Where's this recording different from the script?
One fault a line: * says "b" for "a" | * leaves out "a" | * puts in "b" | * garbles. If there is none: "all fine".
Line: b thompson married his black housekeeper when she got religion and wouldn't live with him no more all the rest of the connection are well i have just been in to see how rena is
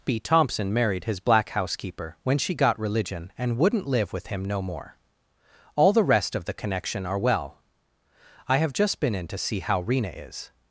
all fine